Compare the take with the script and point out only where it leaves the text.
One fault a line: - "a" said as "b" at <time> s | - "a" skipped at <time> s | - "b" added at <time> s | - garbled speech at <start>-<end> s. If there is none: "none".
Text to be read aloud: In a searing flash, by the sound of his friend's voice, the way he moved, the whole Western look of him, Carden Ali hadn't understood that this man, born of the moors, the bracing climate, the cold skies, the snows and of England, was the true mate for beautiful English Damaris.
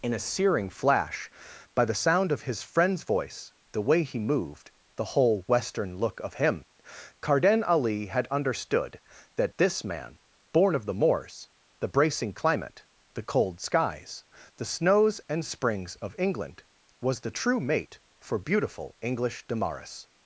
- "hadn't" said as "had" at 8.1 s
- "springs" added at 15.4 s